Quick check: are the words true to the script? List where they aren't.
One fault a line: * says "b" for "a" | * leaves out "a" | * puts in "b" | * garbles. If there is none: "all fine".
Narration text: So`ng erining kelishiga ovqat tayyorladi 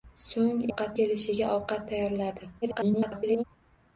* says "ovqat" for "erining"
* garbles